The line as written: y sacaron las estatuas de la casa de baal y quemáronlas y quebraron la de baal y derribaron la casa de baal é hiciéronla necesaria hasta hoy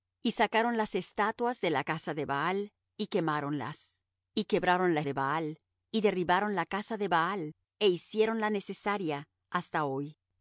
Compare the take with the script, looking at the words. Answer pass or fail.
pass